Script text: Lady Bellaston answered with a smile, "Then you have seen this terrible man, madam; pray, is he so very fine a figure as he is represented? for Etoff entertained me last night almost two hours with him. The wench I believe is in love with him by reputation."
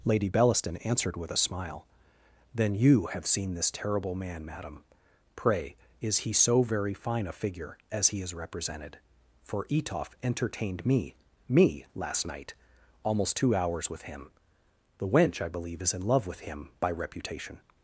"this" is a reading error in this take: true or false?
false